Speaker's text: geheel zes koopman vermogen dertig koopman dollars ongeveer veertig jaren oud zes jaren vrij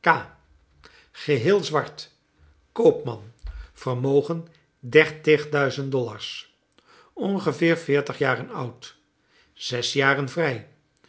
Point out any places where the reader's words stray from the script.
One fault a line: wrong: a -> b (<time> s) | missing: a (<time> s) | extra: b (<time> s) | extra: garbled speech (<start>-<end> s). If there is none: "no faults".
wrong: zes -> zwart (1.6 s)
wrong: koopman -> duizend (5.5 s)